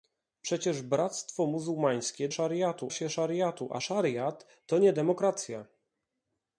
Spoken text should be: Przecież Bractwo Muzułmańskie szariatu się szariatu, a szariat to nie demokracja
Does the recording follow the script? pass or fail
pass